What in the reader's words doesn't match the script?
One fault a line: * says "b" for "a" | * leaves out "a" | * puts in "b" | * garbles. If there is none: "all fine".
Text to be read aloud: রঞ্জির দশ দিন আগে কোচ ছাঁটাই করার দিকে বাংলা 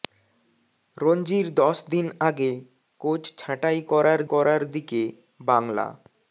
* puts in "করার"